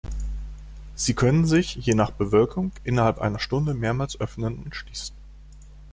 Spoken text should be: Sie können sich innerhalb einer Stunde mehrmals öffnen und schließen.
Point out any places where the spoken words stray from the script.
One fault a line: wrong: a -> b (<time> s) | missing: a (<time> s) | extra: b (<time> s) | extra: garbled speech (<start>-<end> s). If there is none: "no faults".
extra: je nach Bewölkung (1.8 s)